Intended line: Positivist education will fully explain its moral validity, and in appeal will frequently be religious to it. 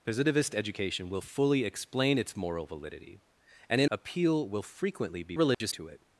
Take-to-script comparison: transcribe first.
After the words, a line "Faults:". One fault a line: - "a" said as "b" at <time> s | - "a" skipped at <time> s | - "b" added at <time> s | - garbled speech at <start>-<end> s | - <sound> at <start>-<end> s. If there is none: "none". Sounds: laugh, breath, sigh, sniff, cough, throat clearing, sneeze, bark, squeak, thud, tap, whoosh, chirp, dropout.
Positivist education will fully explain its moral validity, and in appeal will frequently be religious to it.
Faults:
- dropout at 5.5-5.6 s